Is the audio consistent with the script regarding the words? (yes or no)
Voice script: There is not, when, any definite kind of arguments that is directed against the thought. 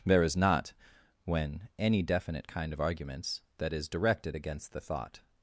yes